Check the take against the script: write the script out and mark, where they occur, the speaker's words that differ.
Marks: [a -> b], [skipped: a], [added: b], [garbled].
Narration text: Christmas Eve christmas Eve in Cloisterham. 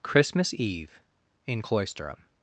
Christmas Eve [skipped: christmas Eve] in Cloisterham.